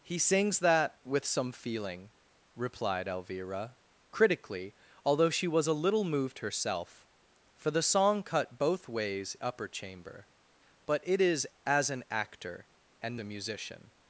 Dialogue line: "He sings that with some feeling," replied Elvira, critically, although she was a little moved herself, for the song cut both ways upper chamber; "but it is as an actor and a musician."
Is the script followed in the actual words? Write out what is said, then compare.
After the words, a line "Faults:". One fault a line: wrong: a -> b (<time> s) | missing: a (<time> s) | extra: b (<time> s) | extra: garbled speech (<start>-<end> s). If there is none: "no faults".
"He sings that with some feeling," replied Elvira, critically, although she was a little moved herself, for the song cut both ways upper chamber; "but it is as an actor and a musician."
Faults:
no faults